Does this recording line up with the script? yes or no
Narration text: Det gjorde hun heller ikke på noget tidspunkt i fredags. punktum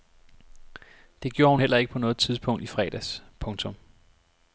yes